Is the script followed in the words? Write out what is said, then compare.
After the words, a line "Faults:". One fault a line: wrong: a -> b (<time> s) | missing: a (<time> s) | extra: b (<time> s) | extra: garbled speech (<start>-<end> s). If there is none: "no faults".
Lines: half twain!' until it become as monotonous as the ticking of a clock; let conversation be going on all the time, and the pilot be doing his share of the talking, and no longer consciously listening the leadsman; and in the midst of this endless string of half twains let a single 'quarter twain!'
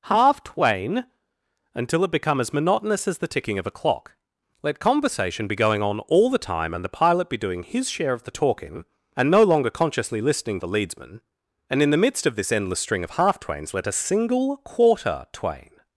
half twain!' until it become as monotonous as the ticking of a clock; let conversation be going on all the time, and the pilot be doing his share of the talking, and no longer consciously listening the leadsman; and in the midst of this endless string of half twains let a single 'quarter twain!'
Faults:
no faults